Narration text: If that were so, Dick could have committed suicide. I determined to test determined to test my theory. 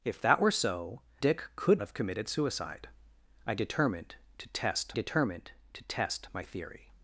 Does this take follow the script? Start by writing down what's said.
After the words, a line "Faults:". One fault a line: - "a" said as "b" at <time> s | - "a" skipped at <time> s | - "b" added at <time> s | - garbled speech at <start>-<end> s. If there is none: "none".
If that were so, Dick could have committed suicide. I determined to test determined to test my theory.
Faults:
none